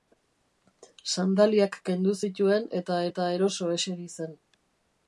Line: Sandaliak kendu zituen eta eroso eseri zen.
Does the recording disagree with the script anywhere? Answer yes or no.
yes